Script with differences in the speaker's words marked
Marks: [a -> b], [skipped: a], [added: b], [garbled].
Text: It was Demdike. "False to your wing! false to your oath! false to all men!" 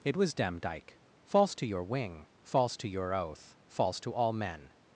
It was Demdike. "False to your wing! false to your oath! false to all men!"